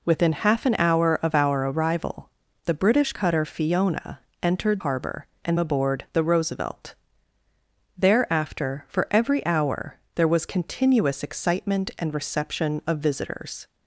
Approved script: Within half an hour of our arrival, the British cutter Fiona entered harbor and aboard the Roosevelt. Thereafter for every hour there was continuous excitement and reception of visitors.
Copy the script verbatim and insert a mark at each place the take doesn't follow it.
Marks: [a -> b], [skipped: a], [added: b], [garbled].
Within half an hour of our arrival, the British cutter Fiona entered harbor and aboard the Roosevelt. Thereafter for every hour there was continuous excitement and reception of visitors.